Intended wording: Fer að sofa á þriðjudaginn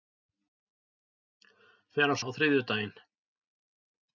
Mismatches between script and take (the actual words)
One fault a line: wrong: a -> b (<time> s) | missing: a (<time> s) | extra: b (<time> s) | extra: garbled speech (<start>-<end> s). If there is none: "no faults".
missing: sofa (2.2 s)